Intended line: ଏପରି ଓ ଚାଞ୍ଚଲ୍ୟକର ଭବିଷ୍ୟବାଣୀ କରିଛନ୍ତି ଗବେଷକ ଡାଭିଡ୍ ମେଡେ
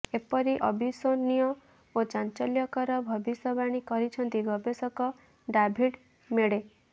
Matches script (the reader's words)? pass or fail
fail